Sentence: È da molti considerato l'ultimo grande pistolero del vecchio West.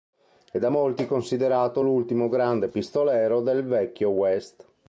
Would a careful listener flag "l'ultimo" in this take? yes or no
no